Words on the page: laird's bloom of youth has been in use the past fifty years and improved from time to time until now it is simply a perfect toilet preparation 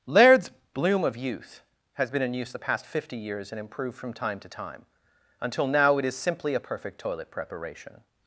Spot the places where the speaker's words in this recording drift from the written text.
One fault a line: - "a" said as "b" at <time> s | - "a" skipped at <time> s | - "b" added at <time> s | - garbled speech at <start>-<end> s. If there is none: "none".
none